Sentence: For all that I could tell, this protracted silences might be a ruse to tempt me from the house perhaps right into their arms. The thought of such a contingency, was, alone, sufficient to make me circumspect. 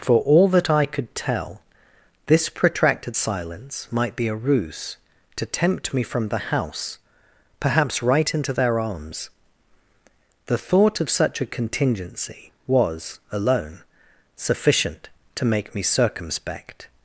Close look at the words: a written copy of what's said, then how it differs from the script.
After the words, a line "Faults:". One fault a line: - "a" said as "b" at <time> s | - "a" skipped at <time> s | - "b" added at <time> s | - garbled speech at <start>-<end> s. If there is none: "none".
For all that I could tell, this protracted silence might be a ruse to tempt me from the house perhaps right into their arms. The thought of such a contingency, was, alone, sufficient to make me circumspect.
Faults:
- "silences" said as "silence" at 3.1 s